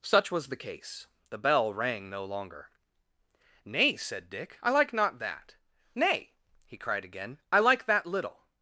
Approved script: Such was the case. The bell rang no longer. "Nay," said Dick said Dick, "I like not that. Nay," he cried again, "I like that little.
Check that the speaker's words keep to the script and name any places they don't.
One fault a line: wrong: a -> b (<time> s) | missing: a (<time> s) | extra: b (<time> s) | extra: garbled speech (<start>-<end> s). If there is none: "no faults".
missing: said Dick (4.6 s)